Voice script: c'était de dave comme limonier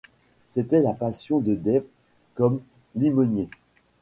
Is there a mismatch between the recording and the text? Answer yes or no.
yes